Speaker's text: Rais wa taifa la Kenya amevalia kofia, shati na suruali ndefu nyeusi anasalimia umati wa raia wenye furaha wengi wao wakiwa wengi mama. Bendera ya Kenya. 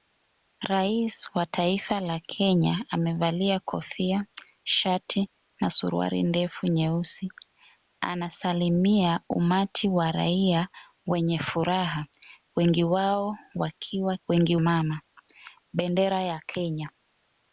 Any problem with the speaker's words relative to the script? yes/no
no